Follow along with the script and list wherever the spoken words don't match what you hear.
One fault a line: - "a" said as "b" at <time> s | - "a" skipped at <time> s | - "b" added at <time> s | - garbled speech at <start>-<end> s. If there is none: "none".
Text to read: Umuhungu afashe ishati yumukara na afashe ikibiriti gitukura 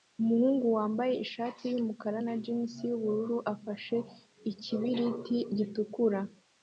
- "afashe" said as "wambaye" at 0.8 s
- "jans yubururu" added at 2.4 s